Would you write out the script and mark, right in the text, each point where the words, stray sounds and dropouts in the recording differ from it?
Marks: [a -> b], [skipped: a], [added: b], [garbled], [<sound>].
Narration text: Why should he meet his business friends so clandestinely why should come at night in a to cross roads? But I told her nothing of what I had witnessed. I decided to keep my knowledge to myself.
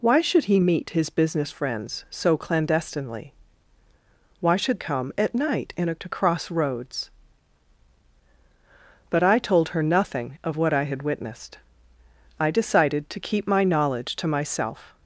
Why should he meet his business friends so clandestinely why should come at night in a to cross roads? But I told her nothing of what I had witnessed. I decided to keep my knowledge to myself.